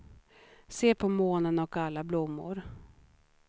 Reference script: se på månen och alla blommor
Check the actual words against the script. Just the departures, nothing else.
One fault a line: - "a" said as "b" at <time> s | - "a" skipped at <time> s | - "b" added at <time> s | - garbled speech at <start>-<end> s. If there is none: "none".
none